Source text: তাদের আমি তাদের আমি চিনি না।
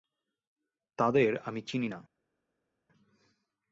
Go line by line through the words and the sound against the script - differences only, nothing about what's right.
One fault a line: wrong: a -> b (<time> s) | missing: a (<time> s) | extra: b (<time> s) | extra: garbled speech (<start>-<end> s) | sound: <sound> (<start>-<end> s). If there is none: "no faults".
missing: তাদের আমি (1.6 s)